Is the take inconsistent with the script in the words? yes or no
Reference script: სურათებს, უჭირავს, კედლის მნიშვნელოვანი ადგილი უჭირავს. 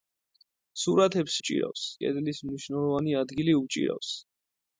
no